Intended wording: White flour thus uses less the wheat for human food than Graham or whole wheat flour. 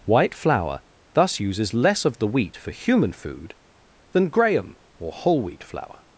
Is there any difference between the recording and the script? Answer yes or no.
yes